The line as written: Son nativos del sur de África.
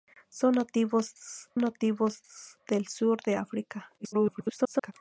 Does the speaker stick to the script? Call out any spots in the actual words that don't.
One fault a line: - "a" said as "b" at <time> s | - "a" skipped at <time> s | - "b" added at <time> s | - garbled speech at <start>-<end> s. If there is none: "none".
- "nativos" added at 1.6 s
- garbled speech at 4.0-4.9 s